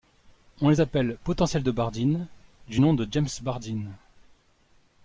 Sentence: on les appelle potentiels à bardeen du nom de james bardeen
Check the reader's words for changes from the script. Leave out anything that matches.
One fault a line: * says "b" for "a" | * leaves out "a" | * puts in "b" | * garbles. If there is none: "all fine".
* says "de" for "à"